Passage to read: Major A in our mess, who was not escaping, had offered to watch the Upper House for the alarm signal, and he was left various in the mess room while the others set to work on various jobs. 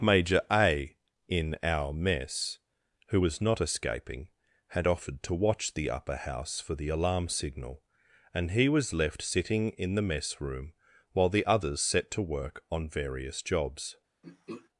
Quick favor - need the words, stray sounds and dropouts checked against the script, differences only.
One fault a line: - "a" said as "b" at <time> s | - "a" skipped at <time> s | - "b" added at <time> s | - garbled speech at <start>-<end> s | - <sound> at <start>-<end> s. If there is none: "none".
- "various" said as "sitting" at 9.2 s
- throat clearing at 14.2-14.7 s